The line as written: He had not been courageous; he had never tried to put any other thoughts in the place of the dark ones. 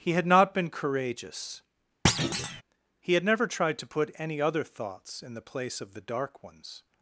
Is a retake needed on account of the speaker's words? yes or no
no